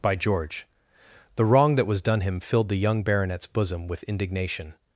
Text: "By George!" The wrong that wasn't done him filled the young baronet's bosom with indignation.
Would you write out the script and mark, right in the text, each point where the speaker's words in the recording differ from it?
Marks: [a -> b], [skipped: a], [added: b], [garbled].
"By George!" The wrong that [wasn't -> was] done him filled the young baronet's bosom with indignation.